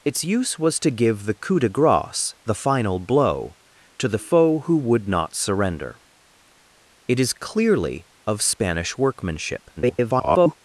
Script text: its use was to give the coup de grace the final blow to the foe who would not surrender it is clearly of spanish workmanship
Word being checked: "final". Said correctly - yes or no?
yes